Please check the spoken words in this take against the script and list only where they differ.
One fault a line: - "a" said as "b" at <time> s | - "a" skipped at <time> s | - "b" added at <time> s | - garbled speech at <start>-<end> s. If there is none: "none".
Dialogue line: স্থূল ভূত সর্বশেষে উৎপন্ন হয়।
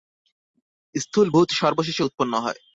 none